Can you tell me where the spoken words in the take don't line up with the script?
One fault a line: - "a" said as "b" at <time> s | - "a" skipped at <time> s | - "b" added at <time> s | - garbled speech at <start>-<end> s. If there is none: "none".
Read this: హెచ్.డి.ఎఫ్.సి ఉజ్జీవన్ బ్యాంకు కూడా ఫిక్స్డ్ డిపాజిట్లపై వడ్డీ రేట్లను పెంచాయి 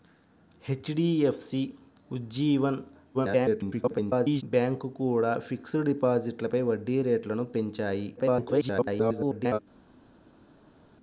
- garbled speech at 3.1-4.4 s
- garbled speech at 8.2-9.6 s